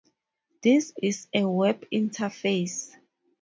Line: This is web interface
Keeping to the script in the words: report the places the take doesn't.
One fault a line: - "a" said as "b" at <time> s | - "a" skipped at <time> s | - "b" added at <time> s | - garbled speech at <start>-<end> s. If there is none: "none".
- "a" added at 1.3 s